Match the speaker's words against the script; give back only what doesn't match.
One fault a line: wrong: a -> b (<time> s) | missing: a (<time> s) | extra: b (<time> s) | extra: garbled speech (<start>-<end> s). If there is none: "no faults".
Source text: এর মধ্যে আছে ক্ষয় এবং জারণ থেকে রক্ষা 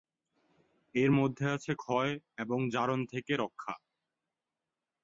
no faults